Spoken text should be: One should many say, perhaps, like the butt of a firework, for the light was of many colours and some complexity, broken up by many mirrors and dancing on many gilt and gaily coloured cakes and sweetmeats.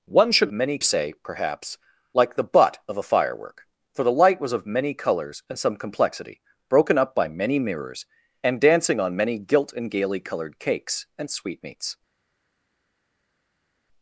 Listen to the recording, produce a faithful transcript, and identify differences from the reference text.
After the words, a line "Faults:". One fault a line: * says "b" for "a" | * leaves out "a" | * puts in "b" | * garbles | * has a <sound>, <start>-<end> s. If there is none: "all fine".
One should many say, perhaps, like the butt of a firework, for the light was of many colours and some complexity, broken up by many mirrors and dancing on many gilt and gaily coloured cakes and sweetmeats.
Faults:
all fine